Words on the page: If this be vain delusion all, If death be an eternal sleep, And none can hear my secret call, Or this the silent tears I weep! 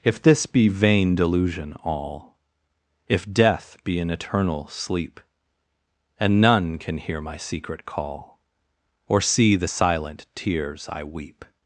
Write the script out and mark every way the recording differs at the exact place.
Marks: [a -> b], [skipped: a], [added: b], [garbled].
If this be vain delusion all, If death be an eternal sleep, And none can hear my secret call, Or [this -> see] the silent tears I weep!